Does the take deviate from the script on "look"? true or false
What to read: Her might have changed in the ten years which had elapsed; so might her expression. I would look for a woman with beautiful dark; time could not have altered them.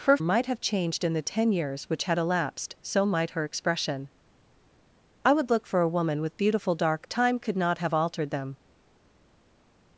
false